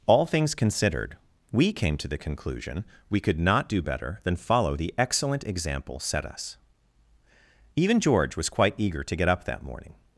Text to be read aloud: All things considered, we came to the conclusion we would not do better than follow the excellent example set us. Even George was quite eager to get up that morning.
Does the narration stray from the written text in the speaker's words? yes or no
yes